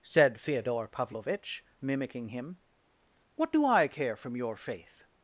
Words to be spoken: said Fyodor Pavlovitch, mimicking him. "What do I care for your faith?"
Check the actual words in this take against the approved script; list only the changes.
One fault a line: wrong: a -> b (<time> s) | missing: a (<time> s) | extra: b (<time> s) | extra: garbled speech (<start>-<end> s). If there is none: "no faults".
wrong: for -> from (4.2 s)